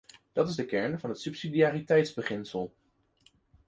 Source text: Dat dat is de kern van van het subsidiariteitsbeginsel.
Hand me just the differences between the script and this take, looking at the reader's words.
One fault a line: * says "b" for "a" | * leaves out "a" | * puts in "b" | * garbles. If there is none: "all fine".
* leaves out "dat"
* leaves out "van"